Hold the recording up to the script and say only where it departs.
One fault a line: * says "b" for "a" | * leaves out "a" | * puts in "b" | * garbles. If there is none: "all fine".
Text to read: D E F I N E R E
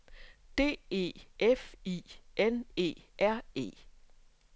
all fine